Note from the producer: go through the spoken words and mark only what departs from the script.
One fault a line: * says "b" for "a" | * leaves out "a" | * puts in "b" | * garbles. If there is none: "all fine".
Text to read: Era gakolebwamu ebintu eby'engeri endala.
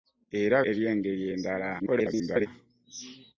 * leaves out "gakolebwamu ebintu"
* garbles